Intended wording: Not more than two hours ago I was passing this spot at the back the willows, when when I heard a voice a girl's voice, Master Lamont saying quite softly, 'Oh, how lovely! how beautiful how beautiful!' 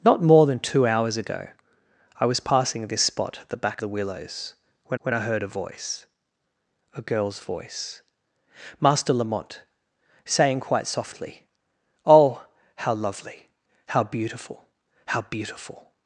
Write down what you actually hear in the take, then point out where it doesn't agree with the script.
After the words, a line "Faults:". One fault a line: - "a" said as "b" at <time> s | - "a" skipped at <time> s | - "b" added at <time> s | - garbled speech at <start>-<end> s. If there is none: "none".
Not more than two hours ago I was passing this spot at the back the willows, when when I heard a voice a girl's voice, Master Lamont saying quite softly, 'Oh, how lovely! how beautiful how beautiful!'
Faults:
none